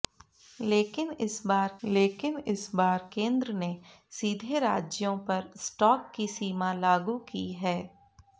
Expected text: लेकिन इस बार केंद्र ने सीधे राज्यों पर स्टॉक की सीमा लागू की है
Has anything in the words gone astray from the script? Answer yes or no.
yes